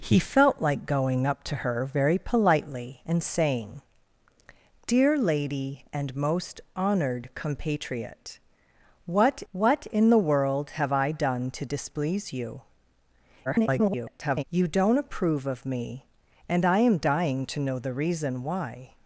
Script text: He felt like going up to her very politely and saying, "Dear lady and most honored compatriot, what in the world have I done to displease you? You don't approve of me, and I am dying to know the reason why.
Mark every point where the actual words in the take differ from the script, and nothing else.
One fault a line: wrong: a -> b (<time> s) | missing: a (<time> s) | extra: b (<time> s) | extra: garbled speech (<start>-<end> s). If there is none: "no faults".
extra: what (9.5 s)
extra: garbled speech (13.4-14.4 s)